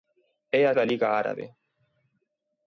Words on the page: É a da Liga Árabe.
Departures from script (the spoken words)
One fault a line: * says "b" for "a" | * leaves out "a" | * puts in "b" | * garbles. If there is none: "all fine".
all fine